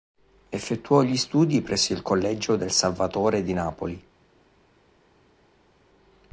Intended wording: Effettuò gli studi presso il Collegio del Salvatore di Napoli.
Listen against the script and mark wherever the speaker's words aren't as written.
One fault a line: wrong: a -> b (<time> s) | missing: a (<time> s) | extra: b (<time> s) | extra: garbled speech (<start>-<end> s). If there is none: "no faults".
no faults